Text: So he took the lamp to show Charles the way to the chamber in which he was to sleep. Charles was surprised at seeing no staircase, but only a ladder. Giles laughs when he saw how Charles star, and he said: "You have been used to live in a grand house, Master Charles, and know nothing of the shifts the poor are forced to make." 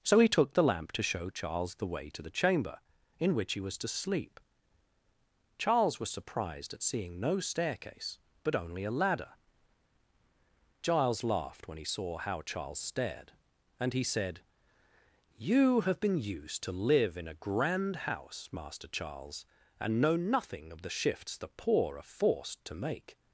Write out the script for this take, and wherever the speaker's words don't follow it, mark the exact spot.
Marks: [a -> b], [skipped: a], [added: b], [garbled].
So he took the lamp to show Charles the way to the chamber in which he was to sleep. Charles was surprised at seeing no staircase, but only a ladder. Giles [laughs -> laughed] when he saw how Charles [star, -> stared] and he said: "You have been used to live in a grand house, Master Charles, and know nothing of the shifts the poor are forced to make."